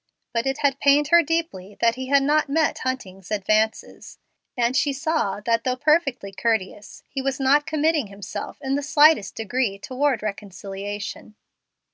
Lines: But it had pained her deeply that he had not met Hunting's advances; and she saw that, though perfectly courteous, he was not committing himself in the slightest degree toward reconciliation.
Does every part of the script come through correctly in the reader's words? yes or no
yes